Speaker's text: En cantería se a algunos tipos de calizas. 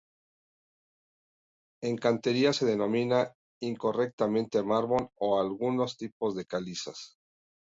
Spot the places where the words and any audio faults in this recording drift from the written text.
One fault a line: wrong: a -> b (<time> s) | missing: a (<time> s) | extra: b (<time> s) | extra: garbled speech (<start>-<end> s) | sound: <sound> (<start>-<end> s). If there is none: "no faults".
extra: denomina incorrectamente mármol (2.6 s)